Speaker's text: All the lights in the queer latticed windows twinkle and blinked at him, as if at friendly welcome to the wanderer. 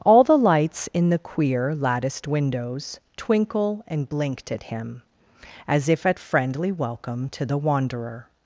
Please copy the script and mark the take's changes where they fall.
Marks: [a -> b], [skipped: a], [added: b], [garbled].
All the lights in the queer latticed windows twinkle and blinked at him, as if at friendly welcome to the wanderer.